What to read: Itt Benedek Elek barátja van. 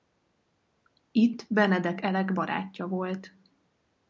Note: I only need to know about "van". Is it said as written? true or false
false